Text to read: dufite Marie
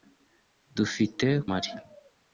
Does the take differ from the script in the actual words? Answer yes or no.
no